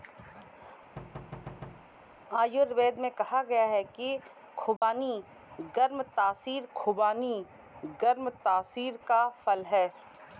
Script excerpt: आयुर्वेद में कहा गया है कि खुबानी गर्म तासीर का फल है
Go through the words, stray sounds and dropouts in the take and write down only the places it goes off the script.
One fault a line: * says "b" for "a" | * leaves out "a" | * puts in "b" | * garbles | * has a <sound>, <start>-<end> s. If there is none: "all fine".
* has a thud, 1.0-1.9 s
* has a dropout, 4.8-4.8 s
* puts in "खुबानी गर्म तासीर"